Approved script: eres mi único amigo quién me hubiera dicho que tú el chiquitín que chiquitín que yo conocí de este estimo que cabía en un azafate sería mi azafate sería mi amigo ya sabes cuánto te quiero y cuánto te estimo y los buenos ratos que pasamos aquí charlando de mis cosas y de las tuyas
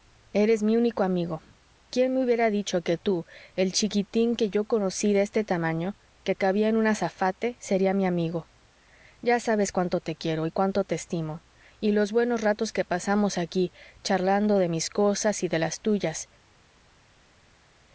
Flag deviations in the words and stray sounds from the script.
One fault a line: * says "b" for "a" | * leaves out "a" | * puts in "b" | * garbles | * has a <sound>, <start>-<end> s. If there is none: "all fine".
* leaves out "chiquitín que"
* says "tamaño" for "estimo"
* leaves out "azafate sería mi"